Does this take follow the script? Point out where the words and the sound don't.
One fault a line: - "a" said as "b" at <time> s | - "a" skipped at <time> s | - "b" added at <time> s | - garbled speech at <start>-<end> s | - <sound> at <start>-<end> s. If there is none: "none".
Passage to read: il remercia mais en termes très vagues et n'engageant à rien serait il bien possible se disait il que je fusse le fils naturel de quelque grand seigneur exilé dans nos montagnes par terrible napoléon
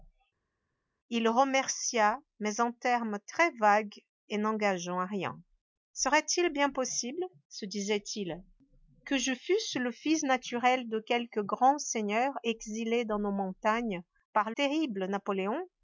none